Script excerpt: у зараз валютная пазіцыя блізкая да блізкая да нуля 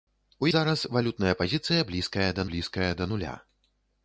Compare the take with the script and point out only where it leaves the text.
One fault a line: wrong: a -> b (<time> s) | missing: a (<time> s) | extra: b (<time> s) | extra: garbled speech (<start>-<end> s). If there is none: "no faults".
no faults